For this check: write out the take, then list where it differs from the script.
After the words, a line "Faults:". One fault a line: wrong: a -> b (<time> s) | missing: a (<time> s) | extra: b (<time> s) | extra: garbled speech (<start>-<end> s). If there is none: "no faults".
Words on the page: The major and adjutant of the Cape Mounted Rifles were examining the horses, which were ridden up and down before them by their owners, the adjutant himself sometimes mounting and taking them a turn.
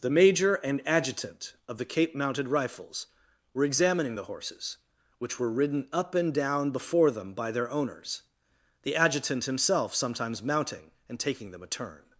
The major and adjutant of the Cape Mounted Rifles were examining the horses, which were ridden up and down before them by their owners, the adjutant himself sometimes mounting and taking them a turn.
Faults:
no faults